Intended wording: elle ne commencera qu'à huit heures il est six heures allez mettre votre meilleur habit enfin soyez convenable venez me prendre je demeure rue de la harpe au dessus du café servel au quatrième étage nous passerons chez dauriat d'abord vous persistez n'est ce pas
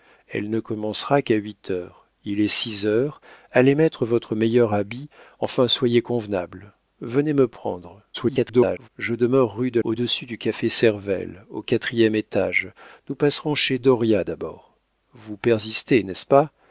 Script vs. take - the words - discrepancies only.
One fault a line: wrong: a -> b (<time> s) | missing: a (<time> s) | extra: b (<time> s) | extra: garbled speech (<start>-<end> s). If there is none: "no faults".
extra: garbled speech (8.1-8.9 s)
missing: la harpe (9.8 s)